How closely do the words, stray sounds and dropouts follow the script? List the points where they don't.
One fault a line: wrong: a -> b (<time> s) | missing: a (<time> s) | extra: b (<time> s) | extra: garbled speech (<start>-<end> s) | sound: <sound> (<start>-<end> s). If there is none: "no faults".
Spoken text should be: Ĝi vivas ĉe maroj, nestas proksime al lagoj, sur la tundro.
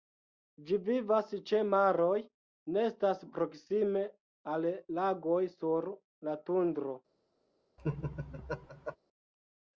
sound: laugh (7.8-9.0 s)